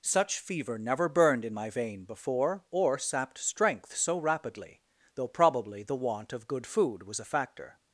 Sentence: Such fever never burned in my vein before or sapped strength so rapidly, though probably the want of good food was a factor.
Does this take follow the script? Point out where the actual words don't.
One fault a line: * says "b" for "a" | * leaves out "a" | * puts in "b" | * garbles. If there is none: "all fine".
all fine